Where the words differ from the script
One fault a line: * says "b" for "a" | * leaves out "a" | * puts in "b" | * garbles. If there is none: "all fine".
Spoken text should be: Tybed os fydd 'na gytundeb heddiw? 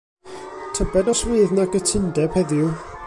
all fine